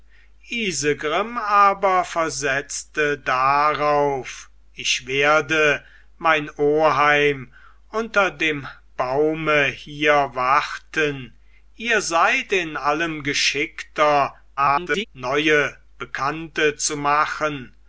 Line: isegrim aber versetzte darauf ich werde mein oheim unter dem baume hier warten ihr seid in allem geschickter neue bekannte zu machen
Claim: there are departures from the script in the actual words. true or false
true